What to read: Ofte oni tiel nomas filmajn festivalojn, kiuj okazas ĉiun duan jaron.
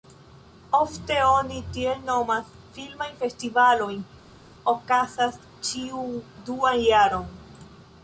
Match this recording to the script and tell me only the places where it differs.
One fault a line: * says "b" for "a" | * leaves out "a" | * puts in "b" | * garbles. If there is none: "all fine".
* leaves out "kiuj"